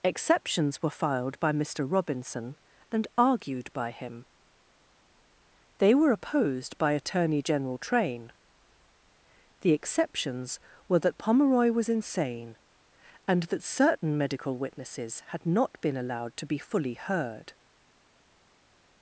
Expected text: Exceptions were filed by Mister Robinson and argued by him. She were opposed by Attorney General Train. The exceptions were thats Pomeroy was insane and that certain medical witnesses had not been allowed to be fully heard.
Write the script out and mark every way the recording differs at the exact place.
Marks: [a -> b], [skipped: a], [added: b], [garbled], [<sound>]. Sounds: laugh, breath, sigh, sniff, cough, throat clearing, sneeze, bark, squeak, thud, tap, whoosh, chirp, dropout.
Exceptions were filed by Mister Robinson and argued by him. [She -> They] were opposed by Attorney General Train. The exceptions were [thats -> that] Pomeroy was insane and that certain medical witnesses had not been allowed to be fully heard.